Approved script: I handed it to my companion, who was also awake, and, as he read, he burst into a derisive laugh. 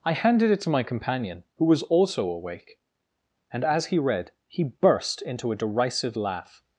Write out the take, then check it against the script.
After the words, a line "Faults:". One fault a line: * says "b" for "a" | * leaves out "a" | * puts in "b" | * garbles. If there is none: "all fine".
I handed it to my companion, who was also awake, and, as he read, he burst into a derisive laugh.
Faults:
all fine